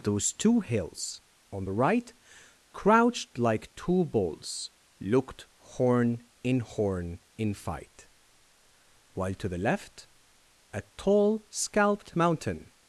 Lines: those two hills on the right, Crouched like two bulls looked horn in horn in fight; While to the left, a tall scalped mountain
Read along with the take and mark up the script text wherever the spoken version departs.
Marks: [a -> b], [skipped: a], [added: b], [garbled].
those two hills on the right, Crouched like two bulls looked horn in horn in fight; While to the left, a tall scalped mountain